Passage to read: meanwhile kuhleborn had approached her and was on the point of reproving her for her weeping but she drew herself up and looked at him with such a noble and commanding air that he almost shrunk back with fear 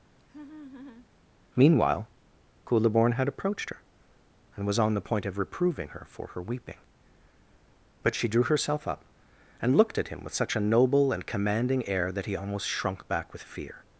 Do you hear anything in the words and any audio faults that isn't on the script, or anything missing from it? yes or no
yes